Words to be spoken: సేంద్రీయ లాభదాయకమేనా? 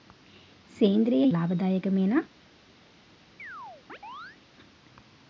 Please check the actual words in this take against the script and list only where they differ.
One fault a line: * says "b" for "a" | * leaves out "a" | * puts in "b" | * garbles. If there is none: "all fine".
all fine